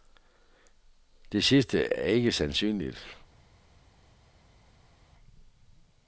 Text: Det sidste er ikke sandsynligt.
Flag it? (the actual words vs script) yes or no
no